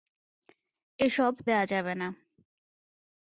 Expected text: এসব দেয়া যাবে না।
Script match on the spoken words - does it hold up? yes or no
yes